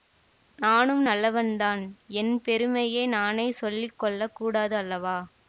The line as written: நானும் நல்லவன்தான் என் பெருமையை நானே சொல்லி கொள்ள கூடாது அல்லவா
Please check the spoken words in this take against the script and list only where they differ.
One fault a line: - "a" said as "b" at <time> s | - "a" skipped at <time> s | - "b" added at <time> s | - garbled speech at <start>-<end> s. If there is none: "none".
none